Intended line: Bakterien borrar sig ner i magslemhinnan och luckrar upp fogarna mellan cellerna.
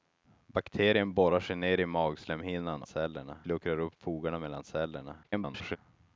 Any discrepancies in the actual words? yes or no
yes